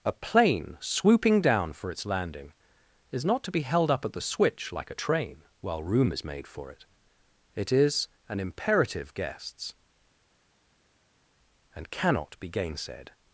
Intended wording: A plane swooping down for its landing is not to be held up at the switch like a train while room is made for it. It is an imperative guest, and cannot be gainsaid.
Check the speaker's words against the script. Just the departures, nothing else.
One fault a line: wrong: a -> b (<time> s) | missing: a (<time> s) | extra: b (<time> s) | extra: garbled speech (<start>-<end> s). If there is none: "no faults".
wrong: guest -> guests (9.1 s)